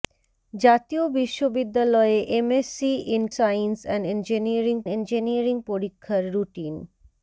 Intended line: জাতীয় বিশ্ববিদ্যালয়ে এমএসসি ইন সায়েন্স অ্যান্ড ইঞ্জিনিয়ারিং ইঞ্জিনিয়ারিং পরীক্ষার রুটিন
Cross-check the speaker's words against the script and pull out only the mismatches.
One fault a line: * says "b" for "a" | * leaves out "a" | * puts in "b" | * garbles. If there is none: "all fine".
all fine